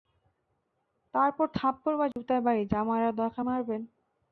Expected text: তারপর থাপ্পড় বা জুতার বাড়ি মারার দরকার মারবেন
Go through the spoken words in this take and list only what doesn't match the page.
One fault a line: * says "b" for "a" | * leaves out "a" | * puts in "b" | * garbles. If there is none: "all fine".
* puts in "যা"